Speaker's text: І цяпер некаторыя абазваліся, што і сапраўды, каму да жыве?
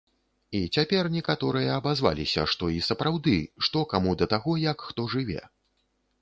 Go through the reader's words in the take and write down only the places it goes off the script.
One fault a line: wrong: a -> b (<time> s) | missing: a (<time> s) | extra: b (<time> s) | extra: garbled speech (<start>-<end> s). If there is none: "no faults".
extra: што (3.7 s)
extra: таго як хто (4.3 s)